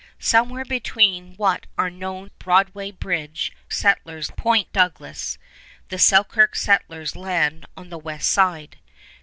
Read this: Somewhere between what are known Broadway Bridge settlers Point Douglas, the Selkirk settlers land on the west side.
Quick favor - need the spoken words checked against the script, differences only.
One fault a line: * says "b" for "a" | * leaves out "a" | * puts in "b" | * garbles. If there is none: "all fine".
all fine